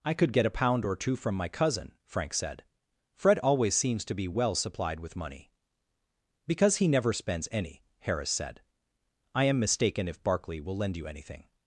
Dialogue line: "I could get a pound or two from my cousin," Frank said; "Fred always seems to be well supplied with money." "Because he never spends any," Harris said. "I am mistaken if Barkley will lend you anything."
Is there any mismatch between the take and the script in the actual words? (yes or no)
no